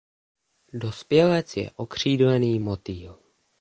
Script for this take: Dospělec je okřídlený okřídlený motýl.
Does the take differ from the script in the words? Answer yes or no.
yes